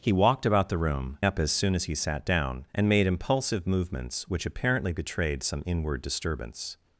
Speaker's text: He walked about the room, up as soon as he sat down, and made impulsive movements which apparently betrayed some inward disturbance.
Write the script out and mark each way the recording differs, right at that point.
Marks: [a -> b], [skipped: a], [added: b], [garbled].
He walked about the room, up as soon as he sat down, and made impulsive movements which apparently betrayed some inward disturbance.